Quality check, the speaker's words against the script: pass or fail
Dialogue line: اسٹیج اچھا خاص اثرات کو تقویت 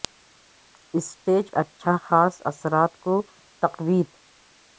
pass